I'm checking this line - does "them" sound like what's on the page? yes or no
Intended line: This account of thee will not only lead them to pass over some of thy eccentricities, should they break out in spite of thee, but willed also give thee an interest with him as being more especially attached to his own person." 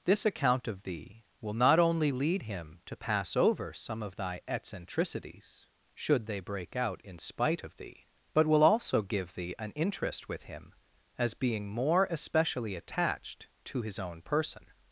no